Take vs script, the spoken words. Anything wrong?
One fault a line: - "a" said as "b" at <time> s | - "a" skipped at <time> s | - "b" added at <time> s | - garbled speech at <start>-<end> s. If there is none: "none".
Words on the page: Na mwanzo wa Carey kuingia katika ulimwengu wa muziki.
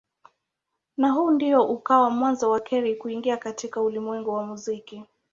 - "huu ndio ukawa" added at 1.1 s